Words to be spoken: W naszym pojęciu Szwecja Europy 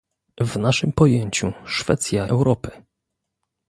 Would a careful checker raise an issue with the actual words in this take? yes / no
no